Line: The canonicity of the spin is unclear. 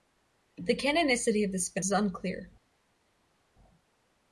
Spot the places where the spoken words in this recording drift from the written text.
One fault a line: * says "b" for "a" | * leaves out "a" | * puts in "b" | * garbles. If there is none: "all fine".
all fine